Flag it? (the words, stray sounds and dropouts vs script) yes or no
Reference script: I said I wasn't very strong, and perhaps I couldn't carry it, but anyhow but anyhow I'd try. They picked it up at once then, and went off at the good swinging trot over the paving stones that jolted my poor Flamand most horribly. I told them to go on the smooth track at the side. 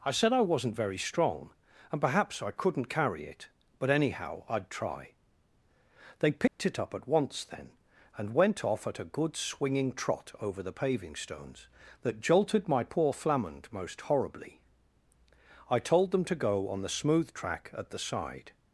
yes